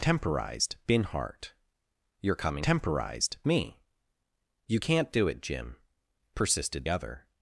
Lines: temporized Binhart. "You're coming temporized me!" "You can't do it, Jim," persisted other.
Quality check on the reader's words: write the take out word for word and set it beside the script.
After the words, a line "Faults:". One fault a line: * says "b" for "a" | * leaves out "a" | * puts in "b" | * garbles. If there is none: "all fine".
temporized Binhart. "You're coming temporized me!" "You can't do it, Jim," persisted other.
Faults:
all fine